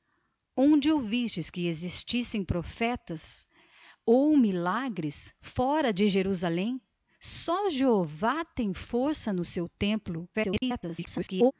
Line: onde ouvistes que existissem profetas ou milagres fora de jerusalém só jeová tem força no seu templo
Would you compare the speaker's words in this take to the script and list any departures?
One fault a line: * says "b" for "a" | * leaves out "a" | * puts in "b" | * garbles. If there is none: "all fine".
* garbles